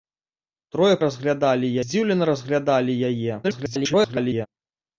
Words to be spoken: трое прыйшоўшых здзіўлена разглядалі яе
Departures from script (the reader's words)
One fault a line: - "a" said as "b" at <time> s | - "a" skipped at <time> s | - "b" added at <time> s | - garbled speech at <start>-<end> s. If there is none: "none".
- "прыйшоўшых" said as "разглядалі" at 1.1 s
- garbled speech at 3.4-4.5 s